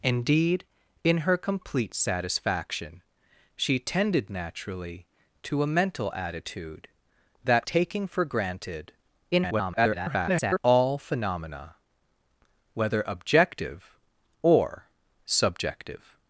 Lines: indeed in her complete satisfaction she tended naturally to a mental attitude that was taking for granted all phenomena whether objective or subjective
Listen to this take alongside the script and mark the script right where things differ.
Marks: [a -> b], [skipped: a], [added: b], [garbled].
indeed in her complete satisfaction she tended naturally to a mental attitude that [skipped: was] taking for granted [garbled] all phenomena whether objective or subjective